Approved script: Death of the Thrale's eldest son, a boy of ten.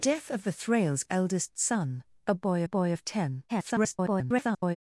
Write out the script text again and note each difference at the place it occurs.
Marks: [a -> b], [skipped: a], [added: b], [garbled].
Death of the Thrale's eldest son, a boy [added: boy] of ten. [garbled]